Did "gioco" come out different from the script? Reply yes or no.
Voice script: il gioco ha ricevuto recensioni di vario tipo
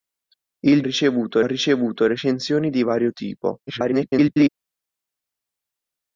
yes